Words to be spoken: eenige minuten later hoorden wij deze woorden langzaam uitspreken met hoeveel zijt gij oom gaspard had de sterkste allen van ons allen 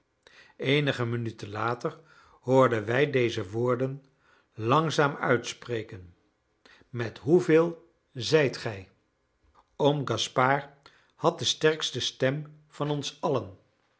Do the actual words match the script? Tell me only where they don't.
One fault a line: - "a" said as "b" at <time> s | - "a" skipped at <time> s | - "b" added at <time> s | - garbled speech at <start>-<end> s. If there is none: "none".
- "allen" said as "stem" at 12.0 s